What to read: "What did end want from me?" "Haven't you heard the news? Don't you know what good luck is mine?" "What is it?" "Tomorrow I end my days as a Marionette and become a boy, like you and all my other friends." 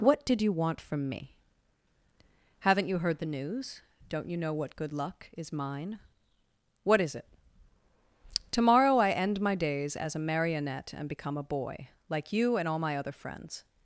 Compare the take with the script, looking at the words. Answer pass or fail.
fail